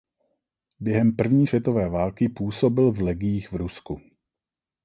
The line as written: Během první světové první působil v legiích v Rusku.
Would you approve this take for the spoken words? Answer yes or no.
no